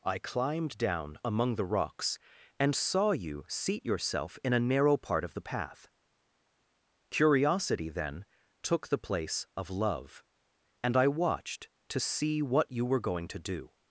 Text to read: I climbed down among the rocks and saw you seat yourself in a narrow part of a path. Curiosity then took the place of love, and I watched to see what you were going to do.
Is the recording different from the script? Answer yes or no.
yes